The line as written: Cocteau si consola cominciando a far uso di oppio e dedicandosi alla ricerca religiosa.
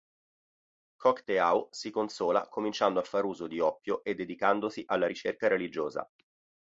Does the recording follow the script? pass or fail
pass